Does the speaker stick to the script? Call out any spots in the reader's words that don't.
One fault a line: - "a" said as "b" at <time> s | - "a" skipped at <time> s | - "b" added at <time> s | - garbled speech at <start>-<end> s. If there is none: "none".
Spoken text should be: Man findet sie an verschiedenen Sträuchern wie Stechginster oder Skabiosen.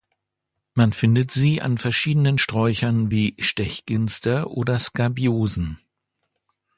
none